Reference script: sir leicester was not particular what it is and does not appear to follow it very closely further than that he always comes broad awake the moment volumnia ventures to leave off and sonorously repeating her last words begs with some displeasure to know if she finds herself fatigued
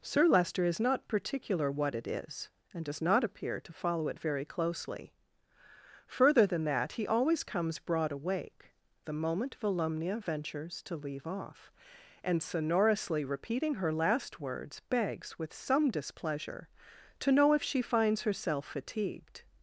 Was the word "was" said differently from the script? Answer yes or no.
yes